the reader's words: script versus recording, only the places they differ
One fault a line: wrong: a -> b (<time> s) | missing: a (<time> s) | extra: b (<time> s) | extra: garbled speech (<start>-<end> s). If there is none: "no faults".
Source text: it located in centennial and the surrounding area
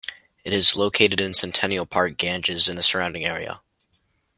extra: is (0.5 s)
extra: park ganges (1.9 s)